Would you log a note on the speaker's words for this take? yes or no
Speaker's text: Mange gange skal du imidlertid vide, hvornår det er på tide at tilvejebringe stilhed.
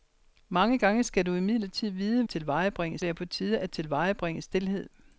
yes